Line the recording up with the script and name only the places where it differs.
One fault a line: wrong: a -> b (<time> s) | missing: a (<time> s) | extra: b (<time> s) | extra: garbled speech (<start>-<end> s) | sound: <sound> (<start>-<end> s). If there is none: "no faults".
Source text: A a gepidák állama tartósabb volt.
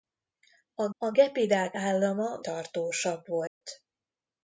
sound: dropout (3.5-3.6 s)